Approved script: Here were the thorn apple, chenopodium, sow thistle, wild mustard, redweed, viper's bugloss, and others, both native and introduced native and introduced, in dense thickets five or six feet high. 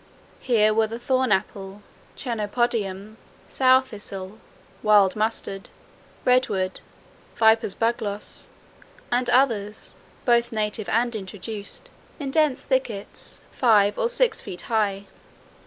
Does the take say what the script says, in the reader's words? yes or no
no